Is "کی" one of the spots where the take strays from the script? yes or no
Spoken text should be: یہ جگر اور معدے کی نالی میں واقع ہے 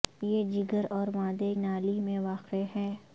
yes